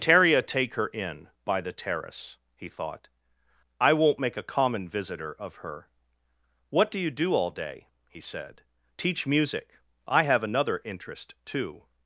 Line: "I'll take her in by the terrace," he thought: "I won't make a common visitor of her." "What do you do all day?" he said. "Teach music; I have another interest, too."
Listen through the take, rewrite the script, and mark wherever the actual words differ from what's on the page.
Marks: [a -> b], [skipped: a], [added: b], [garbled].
["I'll -> Teria] take her in by the terrace," he thought: "I won't make a common visitor of her." "What do you do all day?" he said. "Teach music; I have another interest, too."